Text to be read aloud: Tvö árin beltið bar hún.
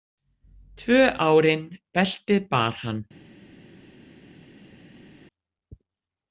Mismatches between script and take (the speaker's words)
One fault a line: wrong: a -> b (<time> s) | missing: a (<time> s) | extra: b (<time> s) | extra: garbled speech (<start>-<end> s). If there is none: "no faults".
wrong: hún -> hann (2.8 s)